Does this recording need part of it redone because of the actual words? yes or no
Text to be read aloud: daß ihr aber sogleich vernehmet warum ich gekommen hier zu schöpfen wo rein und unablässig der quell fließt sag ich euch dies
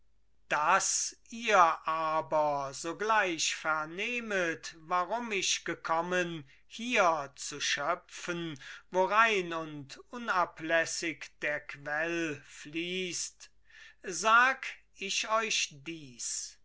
no